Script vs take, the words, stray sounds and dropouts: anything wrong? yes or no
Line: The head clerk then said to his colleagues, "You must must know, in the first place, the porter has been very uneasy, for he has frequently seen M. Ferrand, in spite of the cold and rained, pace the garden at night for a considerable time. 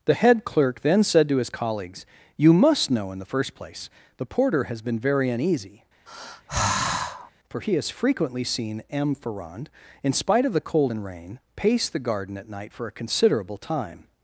yes